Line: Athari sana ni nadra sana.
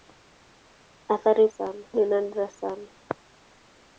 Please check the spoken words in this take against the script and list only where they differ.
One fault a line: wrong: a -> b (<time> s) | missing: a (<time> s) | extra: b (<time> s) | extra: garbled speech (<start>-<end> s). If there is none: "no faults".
no faults